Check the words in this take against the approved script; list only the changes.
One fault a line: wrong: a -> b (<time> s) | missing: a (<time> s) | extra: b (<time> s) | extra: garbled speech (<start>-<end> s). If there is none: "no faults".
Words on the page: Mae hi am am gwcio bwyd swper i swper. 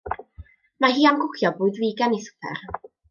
missing: am (1.2 s)
wrong: swper -> figan (1.9 s)